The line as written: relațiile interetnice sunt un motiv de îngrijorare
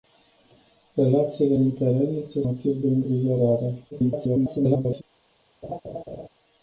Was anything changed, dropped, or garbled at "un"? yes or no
yes